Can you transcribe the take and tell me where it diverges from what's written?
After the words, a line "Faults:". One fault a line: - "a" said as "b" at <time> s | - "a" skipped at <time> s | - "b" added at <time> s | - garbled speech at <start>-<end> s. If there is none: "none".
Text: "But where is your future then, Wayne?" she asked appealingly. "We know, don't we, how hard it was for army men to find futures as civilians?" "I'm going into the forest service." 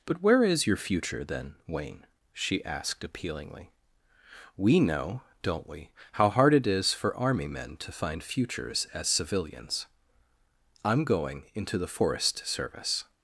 "But where is your future then, Wayne?" she asked appealingly. "We know, don't we, how hard it is for army men to find futures as civilians?" "I'm going into the forest service."
Faults:
- "was" said as "is" at 6.7 s